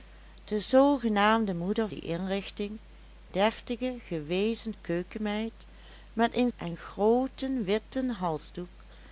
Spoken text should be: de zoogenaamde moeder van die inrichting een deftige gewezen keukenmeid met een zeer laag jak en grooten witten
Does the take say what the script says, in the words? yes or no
no